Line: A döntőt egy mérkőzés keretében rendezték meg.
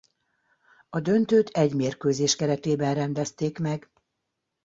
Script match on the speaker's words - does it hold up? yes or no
yes